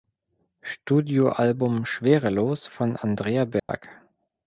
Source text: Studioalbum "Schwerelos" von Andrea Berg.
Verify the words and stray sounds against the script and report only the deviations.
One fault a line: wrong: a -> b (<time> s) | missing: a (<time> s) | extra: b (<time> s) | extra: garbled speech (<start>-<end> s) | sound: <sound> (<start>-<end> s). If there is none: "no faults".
sound: dropout (3.6-3.7 s)